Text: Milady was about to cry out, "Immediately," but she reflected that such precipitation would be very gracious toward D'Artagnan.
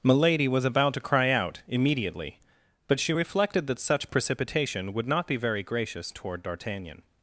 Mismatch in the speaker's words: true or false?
true